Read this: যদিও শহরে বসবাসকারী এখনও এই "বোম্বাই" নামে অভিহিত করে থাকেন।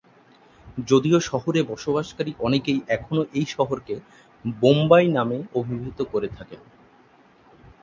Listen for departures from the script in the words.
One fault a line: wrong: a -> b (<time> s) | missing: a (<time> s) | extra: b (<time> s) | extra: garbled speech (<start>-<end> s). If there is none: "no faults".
extra: অনেকেই (2.4 s)
extra: শহরকে (3.5 s)